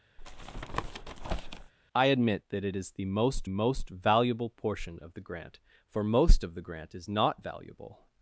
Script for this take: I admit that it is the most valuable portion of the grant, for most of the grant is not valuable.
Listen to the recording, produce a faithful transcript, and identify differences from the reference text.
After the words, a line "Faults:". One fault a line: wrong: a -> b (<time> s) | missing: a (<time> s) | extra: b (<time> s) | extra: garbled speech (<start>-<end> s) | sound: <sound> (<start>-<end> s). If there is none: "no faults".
I admit that it is the most most valuable portion of the grant, for most of the grant is not valuable.
Faults:
sound: tap (0.2-1.7 s)
extra: most (3.5 s)